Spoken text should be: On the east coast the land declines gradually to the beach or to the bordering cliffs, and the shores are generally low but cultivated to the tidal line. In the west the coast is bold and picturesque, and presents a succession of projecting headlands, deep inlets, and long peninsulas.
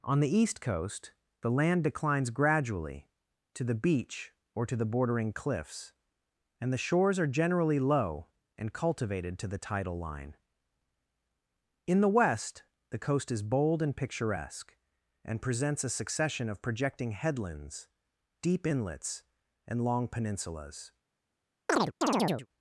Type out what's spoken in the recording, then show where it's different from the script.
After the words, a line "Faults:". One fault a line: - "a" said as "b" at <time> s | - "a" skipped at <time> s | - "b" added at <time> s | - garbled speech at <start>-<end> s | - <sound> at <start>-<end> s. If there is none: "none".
On the east coast the land declines gradually to the beach or to the bordering cliffs, and the shores are generally low and cultivated to the tidal line. In the west the coast is bold and picturesque, and presents a succession of projecting headlands, deep inlets, and long peninsulas.
Faults:
- "but" said as "and" at 8.6 s
- chirp at 21.7-22.5 s